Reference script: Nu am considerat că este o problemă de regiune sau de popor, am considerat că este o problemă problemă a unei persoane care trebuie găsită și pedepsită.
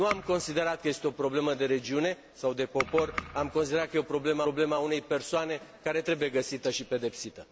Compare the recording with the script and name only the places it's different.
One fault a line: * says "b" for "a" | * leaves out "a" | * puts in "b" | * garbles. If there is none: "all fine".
all fine